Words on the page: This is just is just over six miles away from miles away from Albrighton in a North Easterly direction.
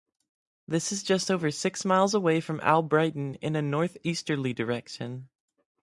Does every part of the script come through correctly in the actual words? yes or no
no